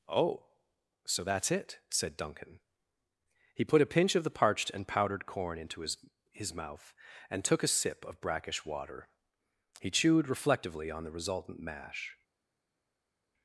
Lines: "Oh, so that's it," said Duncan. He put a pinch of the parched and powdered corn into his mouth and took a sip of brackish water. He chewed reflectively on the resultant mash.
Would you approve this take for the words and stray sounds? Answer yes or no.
no